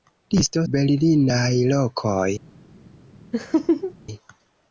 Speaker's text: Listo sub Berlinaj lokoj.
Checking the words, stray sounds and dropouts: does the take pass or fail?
fail